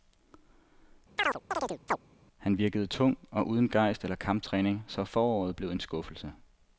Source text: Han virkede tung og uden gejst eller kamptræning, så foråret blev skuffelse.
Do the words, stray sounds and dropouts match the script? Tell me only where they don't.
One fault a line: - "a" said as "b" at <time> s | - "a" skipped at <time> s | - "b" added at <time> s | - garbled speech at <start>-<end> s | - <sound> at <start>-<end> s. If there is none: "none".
- chirp at 1.2-2.0 s
- "en" added at 5.7 s